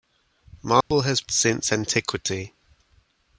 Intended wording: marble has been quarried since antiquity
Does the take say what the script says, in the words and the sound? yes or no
no